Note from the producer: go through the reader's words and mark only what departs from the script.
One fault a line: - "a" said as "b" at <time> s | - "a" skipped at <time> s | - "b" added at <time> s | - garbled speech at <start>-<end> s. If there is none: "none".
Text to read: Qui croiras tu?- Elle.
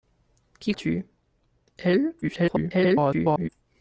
- "croiras" skipped at 0.7 s
- garbled speech at 2.2-3.5 s